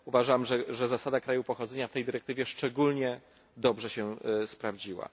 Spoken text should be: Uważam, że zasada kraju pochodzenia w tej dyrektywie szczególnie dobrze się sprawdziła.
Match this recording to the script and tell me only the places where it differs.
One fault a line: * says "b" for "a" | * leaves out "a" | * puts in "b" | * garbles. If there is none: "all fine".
all fine